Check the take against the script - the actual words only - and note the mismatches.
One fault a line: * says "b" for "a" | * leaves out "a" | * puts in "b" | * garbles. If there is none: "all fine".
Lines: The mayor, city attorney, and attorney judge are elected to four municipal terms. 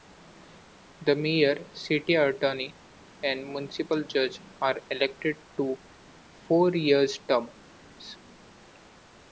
* says "municipal" for "attorney"
* says "year" for "municipal"